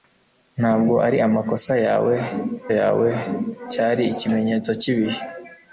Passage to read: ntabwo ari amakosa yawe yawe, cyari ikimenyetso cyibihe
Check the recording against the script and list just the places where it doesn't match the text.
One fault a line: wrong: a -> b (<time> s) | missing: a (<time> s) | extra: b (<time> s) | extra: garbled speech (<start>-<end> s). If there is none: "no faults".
no faults